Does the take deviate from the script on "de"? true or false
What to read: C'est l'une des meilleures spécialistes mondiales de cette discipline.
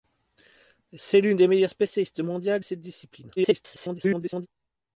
true